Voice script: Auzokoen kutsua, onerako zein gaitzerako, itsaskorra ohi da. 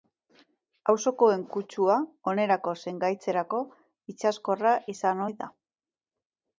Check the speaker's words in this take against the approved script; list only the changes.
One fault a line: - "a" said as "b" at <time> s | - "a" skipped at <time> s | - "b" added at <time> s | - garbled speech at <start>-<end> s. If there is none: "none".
- "izan" added at 4.9 s